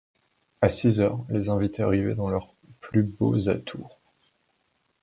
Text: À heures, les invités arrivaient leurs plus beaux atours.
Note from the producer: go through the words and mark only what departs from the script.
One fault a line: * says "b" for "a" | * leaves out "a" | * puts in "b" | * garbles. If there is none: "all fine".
* puts in "six"
* puts in "dans"